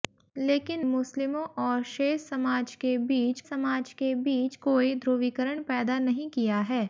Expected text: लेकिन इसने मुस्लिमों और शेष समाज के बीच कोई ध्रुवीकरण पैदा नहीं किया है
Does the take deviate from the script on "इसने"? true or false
true